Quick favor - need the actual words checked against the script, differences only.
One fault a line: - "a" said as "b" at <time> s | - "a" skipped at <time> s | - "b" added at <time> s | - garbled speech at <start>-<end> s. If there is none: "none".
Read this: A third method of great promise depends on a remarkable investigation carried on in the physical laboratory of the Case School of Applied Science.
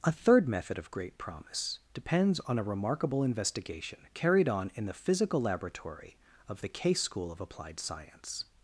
none